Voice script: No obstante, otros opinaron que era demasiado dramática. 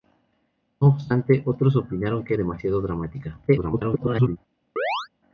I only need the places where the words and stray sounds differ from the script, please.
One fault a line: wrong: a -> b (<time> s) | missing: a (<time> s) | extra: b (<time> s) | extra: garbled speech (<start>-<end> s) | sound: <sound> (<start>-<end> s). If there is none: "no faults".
missing: era (2.3 s)
extra: garbled speech (3.5-4.4 s)
sound: chirp (4.8-5.1 s)